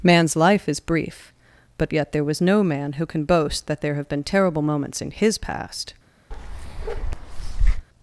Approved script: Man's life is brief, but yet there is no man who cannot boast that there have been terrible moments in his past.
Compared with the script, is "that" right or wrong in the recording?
right